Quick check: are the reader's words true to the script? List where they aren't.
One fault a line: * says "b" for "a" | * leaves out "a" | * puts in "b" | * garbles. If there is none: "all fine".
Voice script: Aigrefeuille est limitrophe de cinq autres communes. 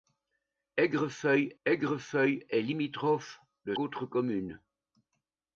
* puts in "aigrefeuille"
* leaves out "cinq"